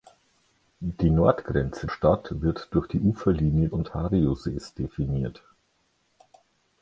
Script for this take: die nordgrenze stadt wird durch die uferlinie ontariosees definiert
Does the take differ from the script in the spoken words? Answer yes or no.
no